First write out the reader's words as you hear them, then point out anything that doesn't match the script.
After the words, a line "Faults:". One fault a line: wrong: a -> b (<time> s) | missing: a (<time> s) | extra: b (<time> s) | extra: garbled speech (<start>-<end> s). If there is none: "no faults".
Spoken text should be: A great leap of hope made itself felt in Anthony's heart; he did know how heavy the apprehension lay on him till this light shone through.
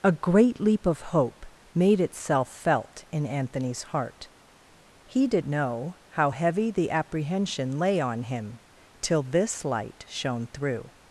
A great leap of hope made itself felt in Anthony's heart; he did know how heavy the apprehension lay on him till this light shone through.
Faults:
no faults